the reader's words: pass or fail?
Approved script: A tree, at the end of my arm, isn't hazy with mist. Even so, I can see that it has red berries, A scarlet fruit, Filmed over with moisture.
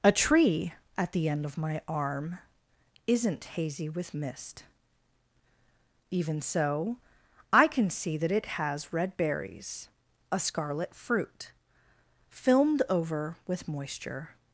pass